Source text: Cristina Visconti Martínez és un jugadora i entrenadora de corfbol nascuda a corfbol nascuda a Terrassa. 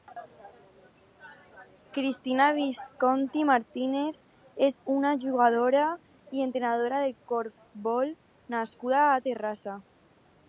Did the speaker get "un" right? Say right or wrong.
wrong